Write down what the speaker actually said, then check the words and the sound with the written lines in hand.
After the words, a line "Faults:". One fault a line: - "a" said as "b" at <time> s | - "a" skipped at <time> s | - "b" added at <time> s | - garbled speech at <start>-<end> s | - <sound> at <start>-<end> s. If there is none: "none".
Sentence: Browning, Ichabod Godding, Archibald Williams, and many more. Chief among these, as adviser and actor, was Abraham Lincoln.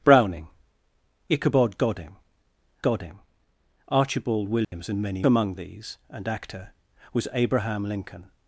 Browning, Ichabod Godding Godding, Archibald Williams, and many among these, and actor, was Abraham Lincoln.
Faults:
- "Godding" added at 2.8 s
- dropout at 4.6-4.7 s
- "more Chief" skipped at 5.3 s
- "as adviser" skipped at 6.0 s